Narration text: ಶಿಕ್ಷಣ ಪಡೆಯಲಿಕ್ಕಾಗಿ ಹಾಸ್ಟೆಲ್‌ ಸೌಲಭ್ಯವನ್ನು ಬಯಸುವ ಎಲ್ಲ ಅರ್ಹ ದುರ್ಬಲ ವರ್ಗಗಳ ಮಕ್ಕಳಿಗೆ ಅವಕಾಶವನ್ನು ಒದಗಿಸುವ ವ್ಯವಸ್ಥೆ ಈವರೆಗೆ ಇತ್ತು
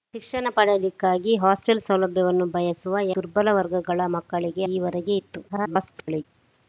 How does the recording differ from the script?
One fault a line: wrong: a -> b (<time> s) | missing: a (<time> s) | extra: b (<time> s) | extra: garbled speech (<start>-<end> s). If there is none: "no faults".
missing: ಎಲ್ಲ ಅರ್ಹ (3.0 s)
missing: ಅವಕಾಶವನ್ನು ಒದಗಿಸುವ ವ್ಯವಸ್ಥೆ (4.6 s)
extra: garbled speech (5.5-6.2 s)